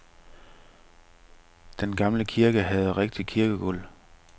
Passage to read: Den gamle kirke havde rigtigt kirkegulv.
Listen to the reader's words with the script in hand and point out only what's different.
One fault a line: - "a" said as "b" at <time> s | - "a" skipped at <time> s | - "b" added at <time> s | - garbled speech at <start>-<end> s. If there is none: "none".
none